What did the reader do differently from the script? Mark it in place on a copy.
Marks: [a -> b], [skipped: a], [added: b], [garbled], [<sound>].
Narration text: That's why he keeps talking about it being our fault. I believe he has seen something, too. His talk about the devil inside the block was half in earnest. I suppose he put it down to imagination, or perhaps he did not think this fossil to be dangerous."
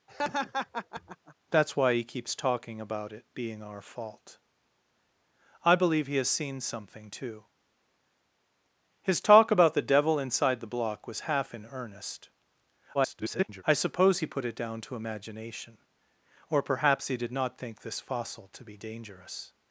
[laugh] That's why he keeps talking about it being our fault. I believe he has seen something, too. His talk about the devil inside the block was half in earnest. [garbled] I suppose he put it down to imagination, or perhaps he did not think this fossil to be dangerous."